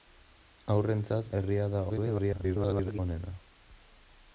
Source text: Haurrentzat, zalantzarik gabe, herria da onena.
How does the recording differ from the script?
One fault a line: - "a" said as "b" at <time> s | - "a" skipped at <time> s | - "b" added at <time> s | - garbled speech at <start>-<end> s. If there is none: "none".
- "zalantzarik gabe" skipped at 1.3 s
- garbled speech at 1.9-3.0 s